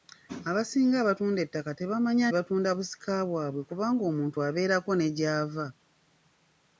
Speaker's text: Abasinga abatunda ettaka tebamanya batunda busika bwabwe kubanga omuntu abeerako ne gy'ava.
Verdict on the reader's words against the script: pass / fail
pass